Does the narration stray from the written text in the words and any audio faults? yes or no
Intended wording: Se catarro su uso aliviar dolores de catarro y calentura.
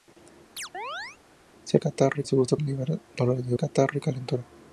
yes